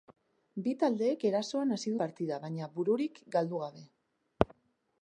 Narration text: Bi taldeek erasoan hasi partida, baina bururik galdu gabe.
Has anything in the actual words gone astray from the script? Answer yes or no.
no